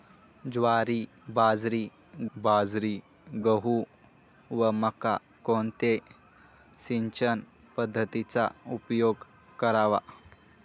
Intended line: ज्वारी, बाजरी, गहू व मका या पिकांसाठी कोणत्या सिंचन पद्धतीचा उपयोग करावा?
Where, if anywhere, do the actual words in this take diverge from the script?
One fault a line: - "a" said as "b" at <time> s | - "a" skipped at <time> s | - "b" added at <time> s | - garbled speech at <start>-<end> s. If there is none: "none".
- "बाजरी" added at 2.4 s
- "या पिकांसाठी" skipped at 5.2 s